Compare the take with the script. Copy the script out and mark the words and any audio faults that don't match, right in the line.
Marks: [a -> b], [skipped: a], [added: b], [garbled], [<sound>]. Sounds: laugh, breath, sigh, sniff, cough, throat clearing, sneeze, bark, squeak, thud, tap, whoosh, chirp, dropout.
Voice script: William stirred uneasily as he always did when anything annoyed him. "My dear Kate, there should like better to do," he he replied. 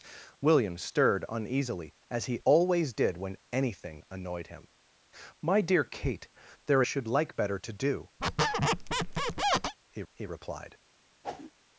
William stirred uneasily as he always did when anything annoyed him. "My dear Kate, there should like better to do," [squeak] he he replied. [whoosh]